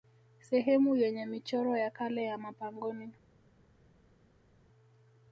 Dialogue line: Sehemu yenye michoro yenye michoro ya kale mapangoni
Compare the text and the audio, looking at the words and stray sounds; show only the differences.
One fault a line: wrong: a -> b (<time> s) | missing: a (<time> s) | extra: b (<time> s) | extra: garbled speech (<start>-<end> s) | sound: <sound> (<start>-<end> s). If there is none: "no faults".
wrong: yenye michoro -> ya kale (1.8 s)
missing: kale (2.4 s)